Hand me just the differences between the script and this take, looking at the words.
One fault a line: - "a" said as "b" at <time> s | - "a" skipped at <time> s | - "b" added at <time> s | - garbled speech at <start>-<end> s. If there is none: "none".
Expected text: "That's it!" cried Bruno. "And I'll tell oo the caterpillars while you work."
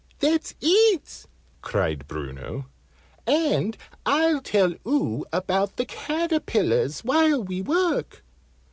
- "about" added at 5.3 s
- "you" said as "we" at 7.4 s